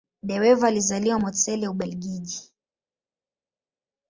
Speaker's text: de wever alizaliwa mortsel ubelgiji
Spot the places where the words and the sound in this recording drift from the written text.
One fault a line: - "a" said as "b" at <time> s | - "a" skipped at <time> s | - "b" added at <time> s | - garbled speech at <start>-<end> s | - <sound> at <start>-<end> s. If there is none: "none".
none